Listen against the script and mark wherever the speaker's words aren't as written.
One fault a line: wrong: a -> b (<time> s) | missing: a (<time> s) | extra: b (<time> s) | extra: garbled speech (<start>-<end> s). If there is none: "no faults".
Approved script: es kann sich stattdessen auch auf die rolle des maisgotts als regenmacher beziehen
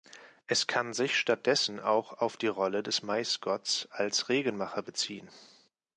no faults